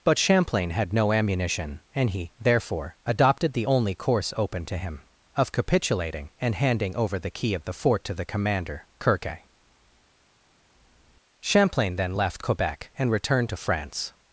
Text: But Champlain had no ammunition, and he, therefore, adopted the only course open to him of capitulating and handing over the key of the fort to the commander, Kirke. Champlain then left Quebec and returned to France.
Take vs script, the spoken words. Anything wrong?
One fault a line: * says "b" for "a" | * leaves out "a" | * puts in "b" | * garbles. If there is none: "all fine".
all fine